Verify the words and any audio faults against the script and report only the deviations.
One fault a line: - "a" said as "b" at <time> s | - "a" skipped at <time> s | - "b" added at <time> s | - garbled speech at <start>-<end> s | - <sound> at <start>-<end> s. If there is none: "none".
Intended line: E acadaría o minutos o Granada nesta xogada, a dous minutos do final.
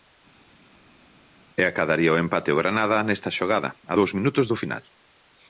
- "minutos" said as "empate" at 2.2 s